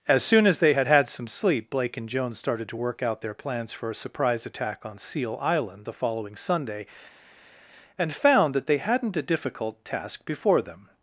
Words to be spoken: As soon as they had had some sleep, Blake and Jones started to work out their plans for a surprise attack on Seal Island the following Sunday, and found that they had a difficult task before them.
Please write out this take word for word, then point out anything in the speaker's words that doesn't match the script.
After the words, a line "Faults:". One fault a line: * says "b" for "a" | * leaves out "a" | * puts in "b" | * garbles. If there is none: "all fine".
As soon as they had had some sleep, Blake and Jones started to work out their plans for a surprise attack on Seal Island the following Sunday, and found that they hadn't a difficult task before them.
Faults:
* says "hadn't" for "had"